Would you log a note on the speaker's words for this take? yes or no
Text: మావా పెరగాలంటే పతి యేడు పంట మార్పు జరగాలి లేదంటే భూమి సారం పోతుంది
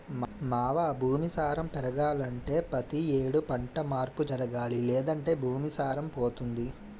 yes